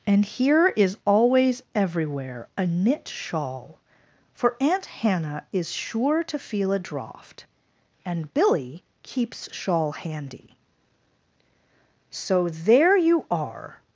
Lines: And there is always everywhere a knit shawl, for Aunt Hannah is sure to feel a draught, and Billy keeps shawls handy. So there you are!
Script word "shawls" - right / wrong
wrong